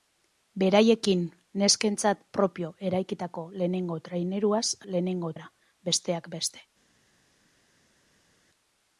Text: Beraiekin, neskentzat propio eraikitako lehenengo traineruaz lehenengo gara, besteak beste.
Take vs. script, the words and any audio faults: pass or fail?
pass